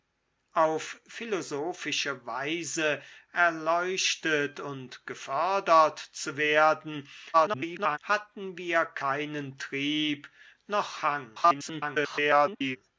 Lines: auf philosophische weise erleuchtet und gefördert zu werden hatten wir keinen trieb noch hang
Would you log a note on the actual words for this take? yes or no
yes